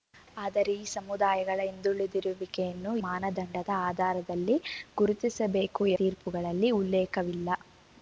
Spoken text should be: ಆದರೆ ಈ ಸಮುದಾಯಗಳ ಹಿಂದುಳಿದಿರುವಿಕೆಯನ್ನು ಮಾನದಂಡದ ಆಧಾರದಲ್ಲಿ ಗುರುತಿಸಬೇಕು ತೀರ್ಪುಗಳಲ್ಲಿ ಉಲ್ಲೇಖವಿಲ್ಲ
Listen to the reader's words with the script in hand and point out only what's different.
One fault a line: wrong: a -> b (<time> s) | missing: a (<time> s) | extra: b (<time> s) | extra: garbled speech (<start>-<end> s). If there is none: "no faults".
no faults